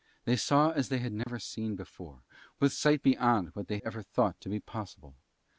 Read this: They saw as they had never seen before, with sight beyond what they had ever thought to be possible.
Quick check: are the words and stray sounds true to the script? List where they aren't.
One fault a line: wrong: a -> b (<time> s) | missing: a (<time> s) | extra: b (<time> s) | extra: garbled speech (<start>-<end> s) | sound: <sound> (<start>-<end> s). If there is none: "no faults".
sound: dropout (1.2-1.3 s)
missing: had (3.8 s)